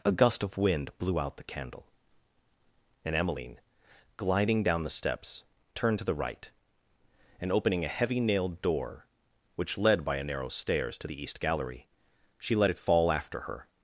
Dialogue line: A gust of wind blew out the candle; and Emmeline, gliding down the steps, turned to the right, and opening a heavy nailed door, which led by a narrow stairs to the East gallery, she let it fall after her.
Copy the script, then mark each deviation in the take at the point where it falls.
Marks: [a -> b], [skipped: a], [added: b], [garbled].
A gust of wind blew out the candle; and Emmeline, gliding down the steps, turned to the right, and opening a heavy nailed door, which led by a narrow stairs to the East gallery, she let it fall after her.